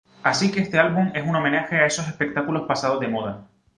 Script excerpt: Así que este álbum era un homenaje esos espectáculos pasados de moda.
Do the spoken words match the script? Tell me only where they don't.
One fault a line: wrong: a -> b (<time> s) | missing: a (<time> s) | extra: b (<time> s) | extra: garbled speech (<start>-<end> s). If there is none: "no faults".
wrong: era -> es (1.1 s)
extra: a (1.8 s)